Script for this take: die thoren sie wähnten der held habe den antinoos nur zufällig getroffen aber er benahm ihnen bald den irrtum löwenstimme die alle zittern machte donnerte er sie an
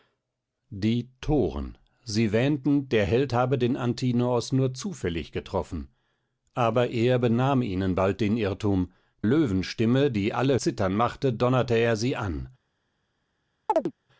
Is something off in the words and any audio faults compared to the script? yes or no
yes